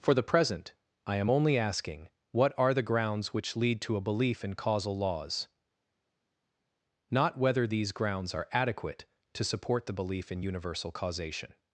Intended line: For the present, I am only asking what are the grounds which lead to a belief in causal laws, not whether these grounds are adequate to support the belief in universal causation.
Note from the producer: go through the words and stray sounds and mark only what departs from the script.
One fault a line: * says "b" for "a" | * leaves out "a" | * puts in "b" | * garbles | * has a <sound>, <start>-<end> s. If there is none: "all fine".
all fine